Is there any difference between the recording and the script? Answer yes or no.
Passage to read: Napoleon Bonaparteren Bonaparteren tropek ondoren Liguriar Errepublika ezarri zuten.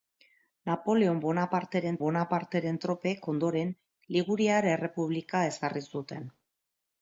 no